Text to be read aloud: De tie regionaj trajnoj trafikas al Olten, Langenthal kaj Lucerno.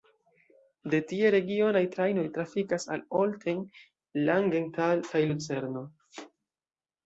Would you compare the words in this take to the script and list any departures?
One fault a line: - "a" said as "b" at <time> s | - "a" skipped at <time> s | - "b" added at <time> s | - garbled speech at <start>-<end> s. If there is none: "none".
none